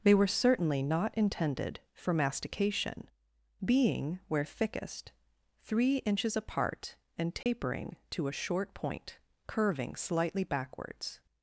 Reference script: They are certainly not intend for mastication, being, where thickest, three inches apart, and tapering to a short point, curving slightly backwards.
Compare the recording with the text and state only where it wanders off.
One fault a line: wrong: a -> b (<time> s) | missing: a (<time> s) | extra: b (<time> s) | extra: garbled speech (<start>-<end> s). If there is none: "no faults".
wrong: are -> were (0.1 s)
wrong: intend -> intended (1.2 s)